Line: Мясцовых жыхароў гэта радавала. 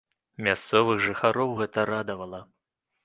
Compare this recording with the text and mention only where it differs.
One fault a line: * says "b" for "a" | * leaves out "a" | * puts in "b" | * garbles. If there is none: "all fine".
all fine